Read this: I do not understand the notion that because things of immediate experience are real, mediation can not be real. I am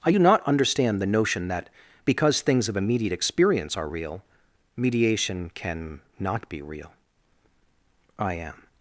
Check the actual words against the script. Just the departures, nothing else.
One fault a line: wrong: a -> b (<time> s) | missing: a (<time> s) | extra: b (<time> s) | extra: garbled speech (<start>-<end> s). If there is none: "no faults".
no faults